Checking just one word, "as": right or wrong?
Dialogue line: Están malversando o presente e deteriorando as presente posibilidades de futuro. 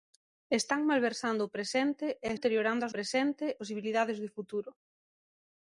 right